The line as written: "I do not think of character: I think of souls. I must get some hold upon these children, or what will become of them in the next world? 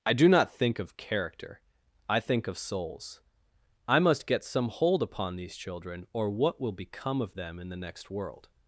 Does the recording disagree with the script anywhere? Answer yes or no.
no